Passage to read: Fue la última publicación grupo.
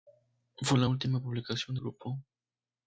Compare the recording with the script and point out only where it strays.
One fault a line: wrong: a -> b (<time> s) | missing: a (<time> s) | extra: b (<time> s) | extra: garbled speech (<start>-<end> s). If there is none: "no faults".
no faults